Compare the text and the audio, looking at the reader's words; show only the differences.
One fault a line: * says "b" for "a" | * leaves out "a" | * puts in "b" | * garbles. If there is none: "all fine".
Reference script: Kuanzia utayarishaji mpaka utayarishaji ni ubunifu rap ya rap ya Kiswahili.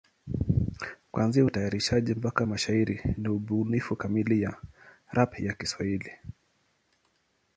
* says "mashairi" for "utayarishaji"
* says "kamili" for "rap"